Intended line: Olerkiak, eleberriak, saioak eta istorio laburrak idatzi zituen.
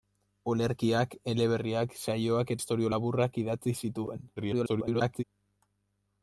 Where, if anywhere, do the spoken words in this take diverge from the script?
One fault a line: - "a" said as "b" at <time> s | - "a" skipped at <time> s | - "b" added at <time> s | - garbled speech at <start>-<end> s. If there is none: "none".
- "eta" skipped at 2.5 s
- garbled speech at 4.4-5.2 s